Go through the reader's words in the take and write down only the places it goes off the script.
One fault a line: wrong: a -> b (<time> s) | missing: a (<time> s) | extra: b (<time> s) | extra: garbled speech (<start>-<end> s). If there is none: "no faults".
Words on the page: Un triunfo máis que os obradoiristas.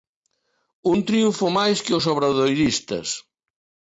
no faults